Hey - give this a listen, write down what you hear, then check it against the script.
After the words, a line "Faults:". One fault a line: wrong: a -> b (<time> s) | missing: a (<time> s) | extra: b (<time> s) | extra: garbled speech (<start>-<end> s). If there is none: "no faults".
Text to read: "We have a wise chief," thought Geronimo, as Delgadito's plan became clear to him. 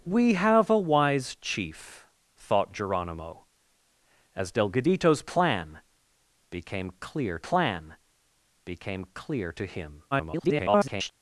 "We have a wise chief," thought Geronimo, as Delgadito's plan became clear plan became clear to him. [garbled]
Faults:
extra: plan became clear (7.4 s)
extra: garbled speech (10.1-11.1 s)